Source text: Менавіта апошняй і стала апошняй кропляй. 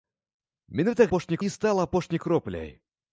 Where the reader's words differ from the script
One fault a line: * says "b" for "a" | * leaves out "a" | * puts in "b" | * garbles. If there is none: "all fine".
all fine